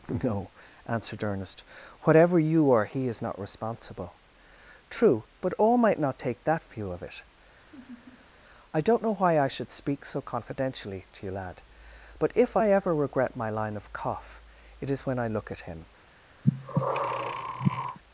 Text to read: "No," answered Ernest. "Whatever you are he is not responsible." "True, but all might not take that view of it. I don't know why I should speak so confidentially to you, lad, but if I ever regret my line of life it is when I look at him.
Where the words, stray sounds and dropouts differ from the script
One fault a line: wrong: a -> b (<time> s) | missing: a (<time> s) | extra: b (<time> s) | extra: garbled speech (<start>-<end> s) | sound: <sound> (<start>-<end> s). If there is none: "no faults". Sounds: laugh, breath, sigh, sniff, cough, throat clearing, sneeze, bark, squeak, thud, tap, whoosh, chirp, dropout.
sound: laugh (7.6-8.3 s)
wrong: life -> cough (13.9 s)
sound: breath (16.4-18.0 s)